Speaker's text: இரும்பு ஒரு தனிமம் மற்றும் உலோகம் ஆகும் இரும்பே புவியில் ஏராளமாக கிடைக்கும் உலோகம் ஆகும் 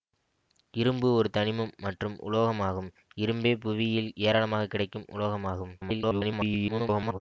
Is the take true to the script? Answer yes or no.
no